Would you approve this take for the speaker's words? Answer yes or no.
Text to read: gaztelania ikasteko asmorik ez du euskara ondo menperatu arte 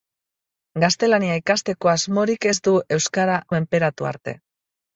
no